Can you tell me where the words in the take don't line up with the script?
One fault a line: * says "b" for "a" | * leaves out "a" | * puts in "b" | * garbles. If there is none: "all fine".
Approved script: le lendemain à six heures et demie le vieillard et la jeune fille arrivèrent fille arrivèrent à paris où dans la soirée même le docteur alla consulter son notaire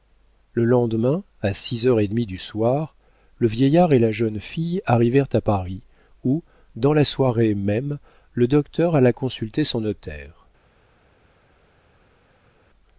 * puts in "du soir"
* leaves out "fille arrivèrent"